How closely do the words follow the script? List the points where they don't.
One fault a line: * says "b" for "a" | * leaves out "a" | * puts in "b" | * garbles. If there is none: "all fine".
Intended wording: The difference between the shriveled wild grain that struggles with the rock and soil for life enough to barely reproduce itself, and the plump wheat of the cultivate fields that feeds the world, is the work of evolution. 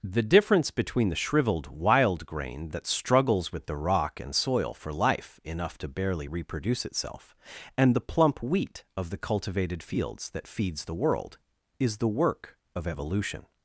* says "cultivated" for "cultivate"